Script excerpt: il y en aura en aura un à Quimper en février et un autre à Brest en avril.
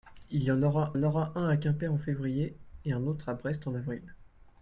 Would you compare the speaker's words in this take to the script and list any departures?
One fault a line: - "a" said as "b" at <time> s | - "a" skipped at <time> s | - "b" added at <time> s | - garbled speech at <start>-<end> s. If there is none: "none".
none